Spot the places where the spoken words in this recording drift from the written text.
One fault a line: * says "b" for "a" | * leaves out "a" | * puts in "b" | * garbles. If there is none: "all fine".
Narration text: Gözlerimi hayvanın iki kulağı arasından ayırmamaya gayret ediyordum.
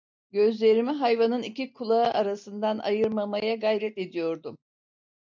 all fine